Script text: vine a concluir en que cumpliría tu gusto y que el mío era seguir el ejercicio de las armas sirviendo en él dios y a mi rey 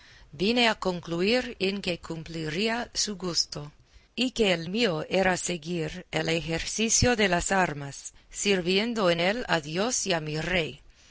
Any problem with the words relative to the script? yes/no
yes